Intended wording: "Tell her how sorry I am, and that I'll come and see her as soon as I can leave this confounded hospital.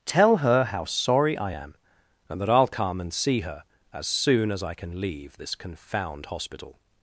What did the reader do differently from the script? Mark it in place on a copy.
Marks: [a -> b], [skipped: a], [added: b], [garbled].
"Tell her how sorry I am, and that I'll come and see her as soon as I can leave this [confounded -> confound] hospital.